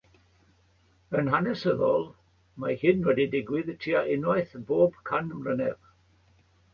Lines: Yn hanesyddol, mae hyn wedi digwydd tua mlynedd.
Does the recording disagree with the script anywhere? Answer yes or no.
yes